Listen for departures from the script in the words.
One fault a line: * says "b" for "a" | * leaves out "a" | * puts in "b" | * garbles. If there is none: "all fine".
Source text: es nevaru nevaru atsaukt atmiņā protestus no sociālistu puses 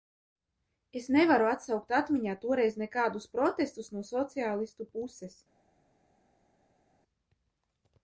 * leaves out "nevaru"
* puts in "toreiz nekādus"